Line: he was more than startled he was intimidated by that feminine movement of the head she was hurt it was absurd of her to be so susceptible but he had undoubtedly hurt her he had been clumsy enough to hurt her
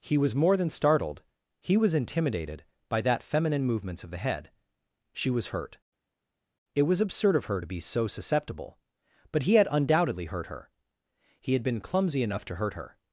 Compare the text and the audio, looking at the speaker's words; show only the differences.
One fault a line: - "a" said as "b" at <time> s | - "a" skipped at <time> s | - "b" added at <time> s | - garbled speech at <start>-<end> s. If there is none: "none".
- "movement" said as "movements" at 3.6 s